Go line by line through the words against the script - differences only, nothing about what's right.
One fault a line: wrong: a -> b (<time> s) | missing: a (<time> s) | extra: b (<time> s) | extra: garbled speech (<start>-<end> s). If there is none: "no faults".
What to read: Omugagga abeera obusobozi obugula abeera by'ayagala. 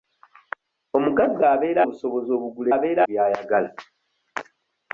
no faults